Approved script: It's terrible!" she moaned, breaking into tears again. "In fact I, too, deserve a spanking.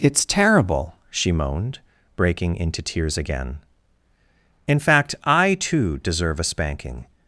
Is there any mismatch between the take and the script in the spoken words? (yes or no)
no